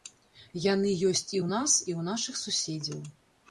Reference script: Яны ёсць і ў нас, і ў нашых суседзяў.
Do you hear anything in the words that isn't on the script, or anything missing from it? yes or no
no